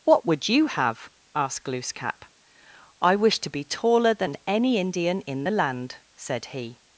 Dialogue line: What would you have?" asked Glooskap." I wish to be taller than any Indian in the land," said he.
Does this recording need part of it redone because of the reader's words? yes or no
no